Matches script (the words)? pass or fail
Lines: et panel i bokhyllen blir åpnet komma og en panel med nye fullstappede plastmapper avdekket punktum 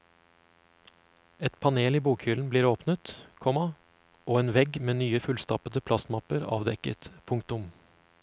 fail